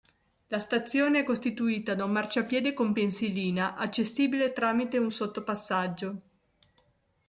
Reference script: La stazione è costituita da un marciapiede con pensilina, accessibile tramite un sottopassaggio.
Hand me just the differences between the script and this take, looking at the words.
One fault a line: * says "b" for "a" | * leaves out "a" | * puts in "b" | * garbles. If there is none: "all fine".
all fine